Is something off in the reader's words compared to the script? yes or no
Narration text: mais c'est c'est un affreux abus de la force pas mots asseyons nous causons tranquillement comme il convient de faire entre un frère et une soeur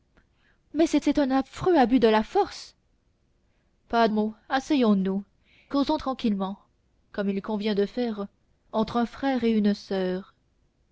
no